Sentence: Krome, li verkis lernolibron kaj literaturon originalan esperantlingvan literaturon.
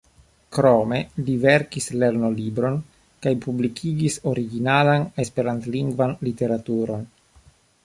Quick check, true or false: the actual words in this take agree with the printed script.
false